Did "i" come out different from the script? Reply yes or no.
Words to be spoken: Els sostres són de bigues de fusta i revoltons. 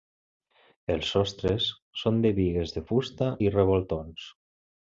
no